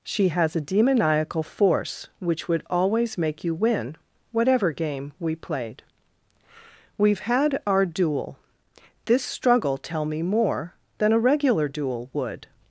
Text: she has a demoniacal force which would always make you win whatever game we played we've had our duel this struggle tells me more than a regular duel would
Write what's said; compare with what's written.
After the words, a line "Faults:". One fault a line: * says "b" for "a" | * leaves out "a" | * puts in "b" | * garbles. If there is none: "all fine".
she has a demoniacal force which would always make you win whatever game we played we've had our duel this struggle tell me more than a regular duel would
Faults:
* says "tell" for "tells"